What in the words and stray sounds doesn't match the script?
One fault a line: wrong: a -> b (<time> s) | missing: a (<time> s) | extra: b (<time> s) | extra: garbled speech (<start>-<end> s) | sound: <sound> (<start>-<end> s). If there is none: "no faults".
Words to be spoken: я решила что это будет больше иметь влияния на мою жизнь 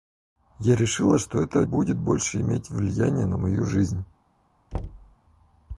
sound: thud (4.7-5.2 s)